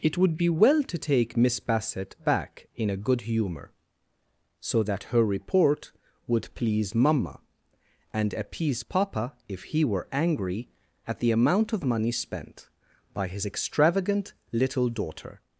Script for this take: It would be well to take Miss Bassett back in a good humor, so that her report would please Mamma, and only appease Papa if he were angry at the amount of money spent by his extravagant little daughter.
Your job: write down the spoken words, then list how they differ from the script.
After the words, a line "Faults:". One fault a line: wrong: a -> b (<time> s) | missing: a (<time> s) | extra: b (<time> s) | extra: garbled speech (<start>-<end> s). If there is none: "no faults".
It would be well to take Miss Bassett back in a good humor, so that her report would please Mamma, and appease Papa if he were angry at the amount of money spent by his extravagant little daughter.
Faults:
missing: only (8.3 s)